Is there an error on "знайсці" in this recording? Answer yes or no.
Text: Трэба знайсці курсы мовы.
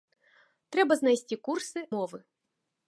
no